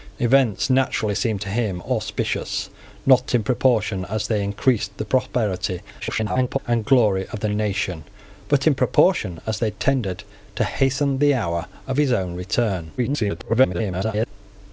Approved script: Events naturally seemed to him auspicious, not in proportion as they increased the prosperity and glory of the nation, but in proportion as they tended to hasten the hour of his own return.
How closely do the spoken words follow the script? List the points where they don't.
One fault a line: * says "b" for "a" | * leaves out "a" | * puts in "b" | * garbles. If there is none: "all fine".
* garbles
* garbles